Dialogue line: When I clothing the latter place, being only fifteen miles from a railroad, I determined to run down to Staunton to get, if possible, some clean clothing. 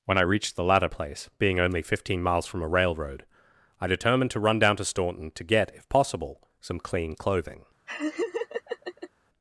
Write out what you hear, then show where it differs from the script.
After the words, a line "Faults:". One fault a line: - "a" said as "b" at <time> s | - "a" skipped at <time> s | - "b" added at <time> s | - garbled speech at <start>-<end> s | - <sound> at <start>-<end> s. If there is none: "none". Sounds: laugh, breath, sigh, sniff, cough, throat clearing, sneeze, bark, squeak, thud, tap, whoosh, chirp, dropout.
When I reached the latter place, being only fifteen miles from a railroad, I determined to run down to Staunton to get, if possible, some clean clothing.
Faults:
- "clothing" said as "reached" at 0.2 s
- laugh at 7.9-9.1 s